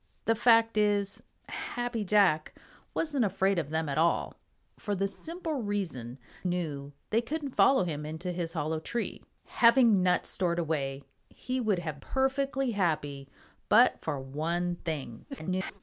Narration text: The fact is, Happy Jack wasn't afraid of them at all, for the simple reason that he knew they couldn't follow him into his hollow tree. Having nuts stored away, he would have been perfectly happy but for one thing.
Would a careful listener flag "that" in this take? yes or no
yes